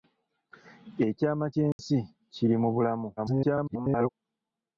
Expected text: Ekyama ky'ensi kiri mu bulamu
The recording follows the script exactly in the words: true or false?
false